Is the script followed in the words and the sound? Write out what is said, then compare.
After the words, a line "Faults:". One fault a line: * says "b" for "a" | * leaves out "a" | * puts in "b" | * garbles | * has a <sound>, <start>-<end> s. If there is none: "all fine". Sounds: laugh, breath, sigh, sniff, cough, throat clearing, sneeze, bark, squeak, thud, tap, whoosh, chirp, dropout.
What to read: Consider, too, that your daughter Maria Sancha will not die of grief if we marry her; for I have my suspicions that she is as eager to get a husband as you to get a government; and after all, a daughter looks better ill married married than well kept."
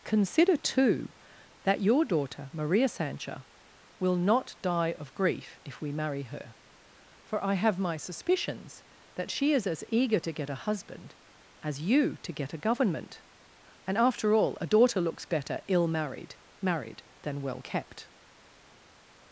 Consider, too, that your daughter Maria Sancha will not die of grief if we marry her; for I have my suspicions that she is as eager to get a husband as you to get a government; and after all, a daughter looks better ill married married than well kept."
Faults:
all fine